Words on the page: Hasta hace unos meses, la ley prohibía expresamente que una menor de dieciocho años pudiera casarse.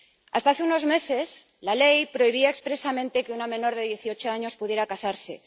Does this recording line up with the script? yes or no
yes